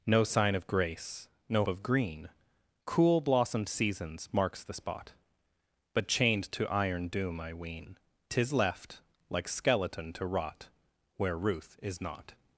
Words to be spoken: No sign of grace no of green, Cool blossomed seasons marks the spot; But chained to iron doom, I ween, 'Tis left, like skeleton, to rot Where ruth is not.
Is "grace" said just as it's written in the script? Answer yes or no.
yes